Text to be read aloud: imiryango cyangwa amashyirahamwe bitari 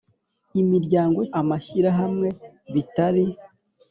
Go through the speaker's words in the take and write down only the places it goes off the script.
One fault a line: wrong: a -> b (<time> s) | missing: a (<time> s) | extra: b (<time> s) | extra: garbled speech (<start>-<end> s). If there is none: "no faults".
missing: cyangwa (1.2 s)